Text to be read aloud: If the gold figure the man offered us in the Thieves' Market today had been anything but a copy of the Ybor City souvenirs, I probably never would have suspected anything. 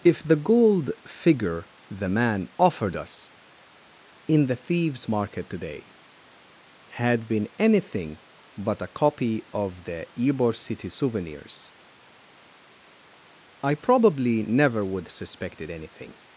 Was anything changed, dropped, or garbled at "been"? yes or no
no